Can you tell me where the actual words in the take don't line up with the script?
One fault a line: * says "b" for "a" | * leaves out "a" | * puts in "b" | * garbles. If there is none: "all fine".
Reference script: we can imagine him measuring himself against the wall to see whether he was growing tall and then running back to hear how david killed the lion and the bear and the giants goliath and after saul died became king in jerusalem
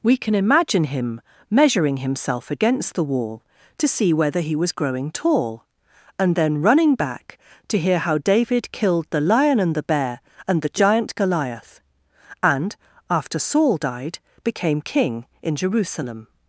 * says "giant" for "giants"